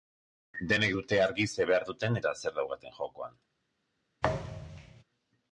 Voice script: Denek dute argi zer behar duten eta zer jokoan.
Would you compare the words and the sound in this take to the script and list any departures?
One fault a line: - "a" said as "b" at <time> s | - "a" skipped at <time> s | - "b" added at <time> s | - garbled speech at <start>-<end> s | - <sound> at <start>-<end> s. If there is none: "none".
- "daukaten" added at 2.6 s
- thud at 4.2-5.0 s